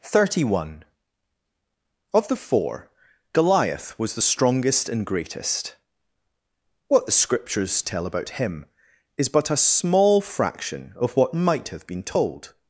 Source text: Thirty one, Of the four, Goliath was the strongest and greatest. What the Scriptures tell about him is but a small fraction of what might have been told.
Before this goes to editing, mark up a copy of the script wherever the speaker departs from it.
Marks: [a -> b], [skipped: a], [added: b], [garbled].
Thirty one, Of the four, Goliath was the strongest and greatest. What the Scriptures tell about him is but a small fraction of what might have been told.